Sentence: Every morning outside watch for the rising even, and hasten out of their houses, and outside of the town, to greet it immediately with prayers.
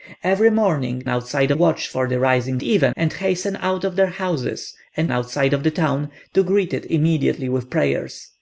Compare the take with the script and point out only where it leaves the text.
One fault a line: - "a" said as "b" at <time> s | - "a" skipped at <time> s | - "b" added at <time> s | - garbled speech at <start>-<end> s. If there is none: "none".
none